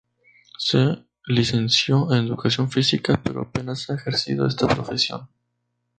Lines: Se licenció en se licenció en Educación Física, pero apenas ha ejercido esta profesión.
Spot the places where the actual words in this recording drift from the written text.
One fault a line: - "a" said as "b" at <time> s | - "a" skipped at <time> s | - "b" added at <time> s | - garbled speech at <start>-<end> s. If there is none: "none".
- "se licenció en" skipped at 2.2 s